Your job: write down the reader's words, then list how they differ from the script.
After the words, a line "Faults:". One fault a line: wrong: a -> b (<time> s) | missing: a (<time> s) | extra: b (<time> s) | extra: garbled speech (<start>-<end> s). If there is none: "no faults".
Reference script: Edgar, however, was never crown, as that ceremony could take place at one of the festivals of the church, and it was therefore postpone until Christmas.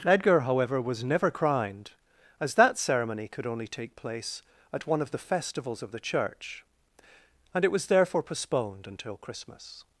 Edgar, however, was never crowned, as that ceremony could only take place at one of the festivals of the church, and it was therefore postponed until Christmas.
Faults:
wrong: crown -> crowned (1.3 s)
extra: only (3.5 s)
wrong: postpone -> postponed (8.2 s)